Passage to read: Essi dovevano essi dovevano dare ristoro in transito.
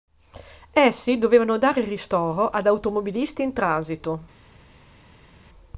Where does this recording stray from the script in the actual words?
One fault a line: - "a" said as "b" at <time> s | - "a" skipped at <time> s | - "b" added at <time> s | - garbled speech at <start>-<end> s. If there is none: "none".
- "essi dovevano dare ristoro" said as "dare ristoro ad automobilisti" at 1.6 s